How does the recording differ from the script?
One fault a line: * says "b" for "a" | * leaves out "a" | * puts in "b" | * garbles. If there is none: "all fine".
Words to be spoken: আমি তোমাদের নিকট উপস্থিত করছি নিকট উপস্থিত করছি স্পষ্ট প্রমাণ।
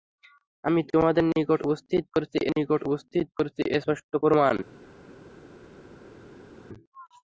all fine